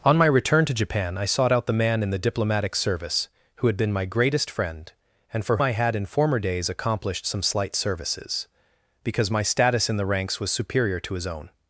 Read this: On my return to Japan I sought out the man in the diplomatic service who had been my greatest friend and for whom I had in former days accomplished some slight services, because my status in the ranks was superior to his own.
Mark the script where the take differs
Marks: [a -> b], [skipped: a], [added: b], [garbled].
On my return to Japan I sought out the man in the diplomatic service who had been my greatest friend and for [skipped: whom] I had in former days accomplished some slight services, because my status in the ranks was superior to his own.